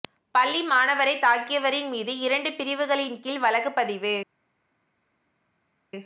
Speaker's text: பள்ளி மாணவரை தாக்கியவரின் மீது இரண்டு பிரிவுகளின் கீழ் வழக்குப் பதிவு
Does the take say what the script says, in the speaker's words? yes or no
yes